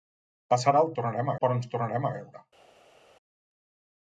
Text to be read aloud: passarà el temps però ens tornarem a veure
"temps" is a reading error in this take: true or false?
true